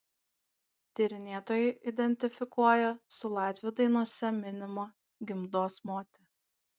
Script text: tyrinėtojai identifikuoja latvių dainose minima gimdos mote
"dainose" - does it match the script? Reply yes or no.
yes